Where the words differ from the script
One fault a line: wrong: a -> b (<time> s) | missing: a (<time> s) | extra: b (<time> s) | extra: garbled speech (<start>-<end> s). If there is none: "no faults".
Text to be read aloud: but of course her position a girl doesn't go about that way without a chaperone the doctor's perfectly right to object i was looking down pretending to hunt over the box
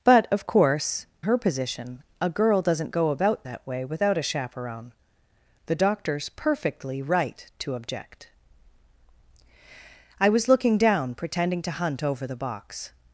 no faults